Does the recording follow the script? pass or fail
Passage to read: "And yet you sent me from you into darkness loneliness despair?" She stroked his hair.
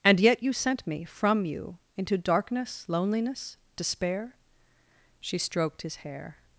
pass